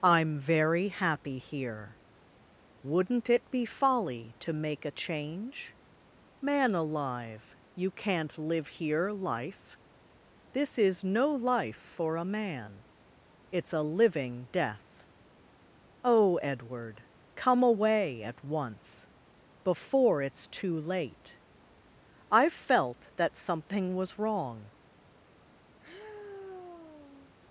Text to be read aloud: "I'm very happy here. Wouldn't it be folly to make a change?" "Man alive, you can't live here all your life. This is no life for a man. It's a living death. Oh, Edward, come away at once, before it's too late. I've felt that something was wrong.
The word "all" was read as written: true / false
false